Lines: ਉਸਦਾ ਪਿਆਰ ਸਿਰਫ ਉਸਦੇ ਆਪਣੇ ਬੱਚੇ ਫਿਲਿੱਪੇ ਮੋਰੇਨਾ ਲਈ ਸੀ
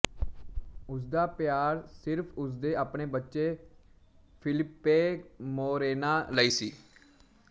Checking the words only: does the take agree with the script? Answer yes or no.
yes